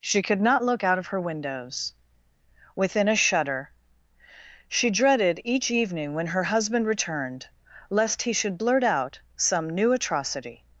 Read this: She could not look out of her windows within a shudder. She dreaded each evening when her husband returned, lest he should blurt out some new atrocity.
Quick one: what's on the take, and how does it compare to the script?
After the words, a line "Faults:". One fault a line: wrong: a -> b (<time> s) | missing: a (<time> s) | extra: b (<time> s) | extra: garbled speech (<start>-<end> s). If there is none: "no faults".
She could not look out of her windows within a shudder. She dreaded each evening when her husband returned, lest he should blurt out some new atrocity.
Faults:
no faults